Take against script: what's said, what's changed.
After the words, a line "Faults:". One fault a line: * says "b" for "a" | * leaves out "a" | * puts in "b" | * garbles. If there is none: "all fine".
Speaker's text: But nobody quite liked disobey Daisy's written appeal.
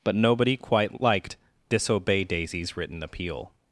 But nobody quite liked disobey Daisy's written appeal.
Faults:
all fine